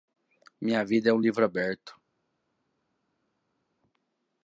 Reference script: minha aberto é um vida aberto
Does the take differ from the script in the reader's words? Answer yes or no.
yes